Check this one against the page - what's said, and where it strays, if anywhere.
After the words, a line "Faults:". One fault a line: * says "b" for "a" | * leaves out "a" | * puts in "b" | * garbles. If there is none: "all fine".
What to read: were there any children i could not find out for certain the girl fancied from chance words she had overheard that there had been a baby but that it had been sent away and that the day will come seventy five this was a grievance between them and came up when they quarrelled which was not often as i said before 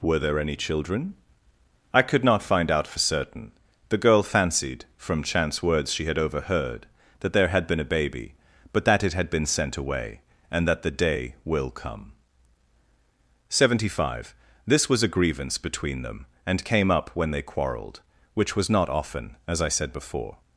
were there any children i could not find out for certain the girl fancied from chance words she had overheard that there had been a baby but that it had been sent away and that the day will come seventy five this was a grievance between them and came up when they quarrelled which was not often as i said before
Faults:
all fine